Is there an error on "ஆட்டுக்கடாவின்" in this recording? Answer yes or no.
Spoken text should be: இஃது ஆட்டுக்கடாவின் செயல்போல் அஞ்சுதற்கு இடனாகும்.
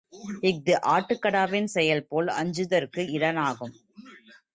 no